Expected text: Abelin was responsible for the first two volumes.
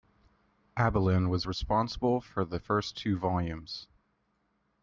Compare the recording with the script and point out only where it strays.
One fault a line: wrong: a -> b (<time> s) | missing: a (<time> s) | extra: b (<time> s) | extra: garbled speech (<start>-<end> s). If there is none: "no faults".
no faults